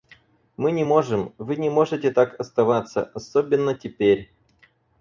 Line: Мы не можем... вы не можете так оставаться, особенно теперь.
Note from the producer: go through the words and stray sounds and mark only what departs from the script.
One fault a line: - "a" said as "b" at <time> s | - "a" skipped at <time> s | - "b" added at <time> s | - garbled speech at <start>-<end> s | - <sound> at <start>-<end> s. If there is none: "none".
none